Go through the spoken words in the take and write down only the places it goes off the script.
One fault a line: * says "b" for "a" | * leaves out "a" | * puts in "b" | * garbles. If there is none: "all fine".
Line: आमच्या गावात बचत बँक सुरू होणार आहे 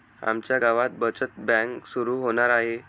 all fine